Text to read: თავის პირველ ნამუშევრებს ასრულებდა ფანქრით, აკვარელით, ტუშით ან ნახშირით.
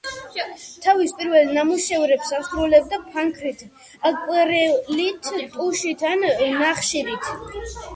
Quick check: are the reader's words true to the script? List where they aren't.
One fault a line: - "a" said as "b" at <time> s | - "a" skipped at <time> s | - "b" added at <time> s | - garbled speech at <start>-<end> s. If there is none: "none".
none